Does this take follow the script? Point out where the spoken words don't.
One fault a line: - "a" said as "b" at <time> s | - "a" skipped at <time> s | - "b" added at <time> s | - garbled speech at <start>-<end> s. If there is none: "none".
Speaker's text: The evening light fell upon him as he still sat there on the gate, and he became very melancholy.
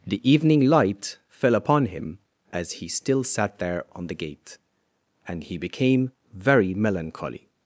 none